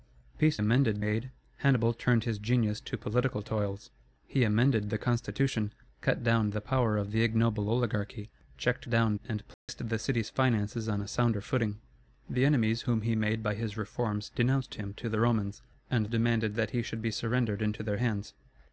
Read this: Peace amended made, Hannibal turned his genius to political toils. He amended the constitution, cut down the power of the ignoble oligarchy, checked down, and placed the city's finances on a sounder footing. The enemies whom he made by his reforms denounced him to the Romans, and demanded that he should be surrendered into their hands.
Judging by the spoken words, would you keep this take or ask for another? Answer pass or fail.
pass